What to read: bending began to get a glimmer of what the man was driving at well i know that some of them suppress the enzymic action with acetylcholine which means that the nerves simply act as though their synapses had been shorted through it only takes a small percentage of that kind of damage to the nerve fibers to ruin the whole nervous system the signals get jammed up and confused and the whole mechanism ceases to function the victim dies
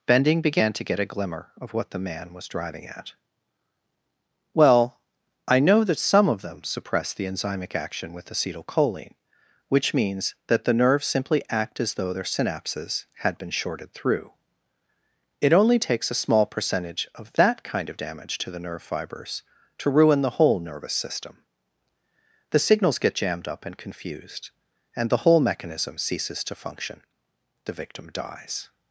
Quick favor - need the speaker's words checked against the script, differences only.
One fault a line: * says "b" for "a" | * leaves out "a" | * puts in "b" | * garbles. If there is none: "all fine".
all fine